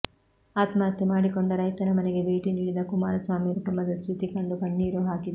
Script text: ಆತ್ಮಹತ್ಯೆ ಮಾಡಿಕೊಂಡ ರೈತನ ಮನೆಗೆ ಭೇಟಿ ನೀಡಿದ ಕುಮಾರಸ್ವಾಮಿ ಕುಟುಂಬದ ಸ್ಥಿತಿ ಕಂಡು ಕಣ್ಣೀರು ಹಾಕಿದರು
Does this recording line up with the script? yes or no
yes